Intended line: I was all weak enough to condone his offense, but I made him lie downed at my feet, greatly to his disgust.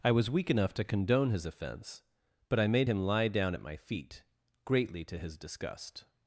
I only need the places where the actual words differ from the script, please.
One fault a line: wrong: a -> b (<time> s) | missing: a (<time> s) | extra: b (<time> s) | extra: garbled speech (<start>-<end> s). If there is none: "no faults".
missing: all (0.3 s)
wrong: downed -> down (3.3 s)